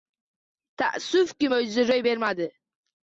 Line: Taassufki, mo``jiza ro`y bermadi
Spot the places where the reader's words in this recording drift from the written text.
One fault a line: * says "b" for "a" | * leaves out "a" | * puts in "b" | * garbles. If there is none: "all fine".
all fine